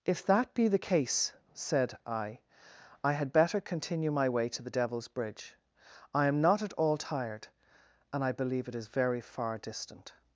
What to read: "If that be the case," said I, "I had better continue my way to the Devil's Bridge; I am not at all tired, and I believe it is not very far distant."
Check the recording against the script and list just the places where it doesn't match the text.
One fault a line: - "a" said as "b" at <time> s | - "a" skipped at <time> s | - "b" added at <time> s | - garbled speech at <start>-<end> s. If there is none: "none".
- "not" skipped at 8.9 s